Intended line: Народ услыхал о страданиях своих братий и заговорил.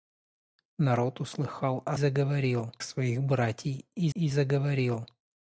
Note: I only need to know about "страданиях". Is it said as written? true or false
false